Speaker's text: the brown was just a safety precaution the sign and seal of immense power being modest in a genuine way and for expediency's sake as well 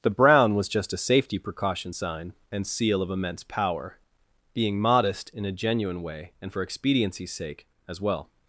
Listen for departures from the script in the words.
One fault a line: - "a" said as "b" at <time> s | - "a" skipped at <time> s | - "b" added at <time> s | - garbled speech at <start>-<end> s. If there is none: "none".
- "the" skipped at 1.9 s